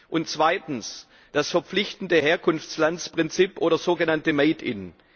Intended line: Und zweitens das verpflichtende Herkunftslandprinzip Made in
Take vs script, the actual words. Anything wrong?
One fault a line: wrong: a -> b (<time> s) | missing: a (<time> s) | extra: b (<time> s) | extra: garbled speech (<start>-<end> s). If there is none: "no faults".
extra: oder sogenannte (3.6 s)